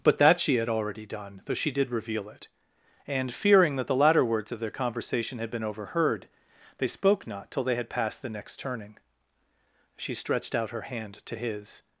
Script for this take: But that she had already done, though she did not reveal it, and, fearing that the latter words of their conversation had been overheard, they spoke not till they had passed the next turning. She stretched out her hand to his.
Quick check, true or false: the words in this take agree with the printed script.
false